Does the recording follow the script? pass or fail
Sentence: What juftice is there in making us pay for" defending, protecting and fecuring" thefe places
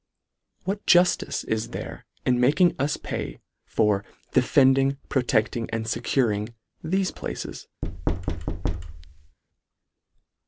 pass